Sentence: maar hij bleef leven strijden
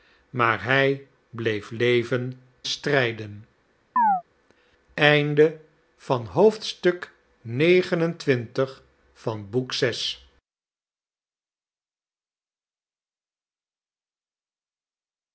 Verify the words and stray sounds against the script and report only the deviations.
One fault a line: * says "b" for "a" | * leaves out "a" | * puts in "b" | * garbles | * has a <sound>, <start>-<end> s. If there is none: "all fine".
* has a chirp, 4.0-4.2 s